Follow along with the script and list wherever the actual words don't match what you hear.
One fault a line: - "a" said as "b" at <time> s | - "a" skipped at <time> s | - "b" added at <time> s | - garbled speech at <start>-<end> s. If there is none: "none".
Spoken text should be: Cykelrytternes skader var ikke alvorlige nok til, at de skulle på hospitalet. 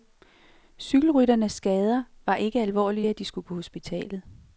- "nok til" skipped at 3.1 s